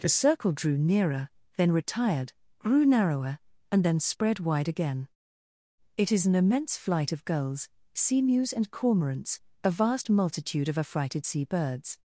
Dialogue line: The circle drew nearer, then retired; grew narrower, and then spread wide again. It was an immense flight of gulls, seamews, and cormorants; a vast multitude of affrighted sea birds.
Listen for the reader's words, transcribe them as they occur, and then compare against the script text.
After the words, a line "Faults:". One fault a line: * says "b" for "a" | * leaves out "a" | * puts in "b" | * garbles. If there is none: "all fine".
The circle drew nearer, then retired; grew narrower, and then spread wide again. It is an immense flight of gulls, seamews, and cormorants; a vast multitude of affrighted sea birds.
Faults:
* says "is" for "was"